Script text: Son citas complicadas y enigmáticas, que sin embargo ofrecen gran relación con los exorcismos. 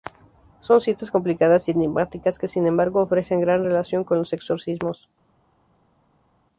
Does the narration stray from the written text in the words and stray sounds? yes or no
no